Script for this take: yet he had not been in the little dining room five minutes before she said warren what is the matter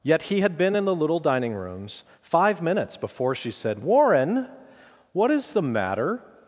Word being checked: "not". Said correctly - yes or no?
no